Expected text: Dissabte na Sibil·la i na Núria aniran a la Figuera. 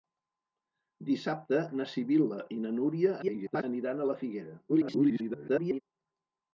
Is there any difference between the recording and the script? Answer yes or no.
yes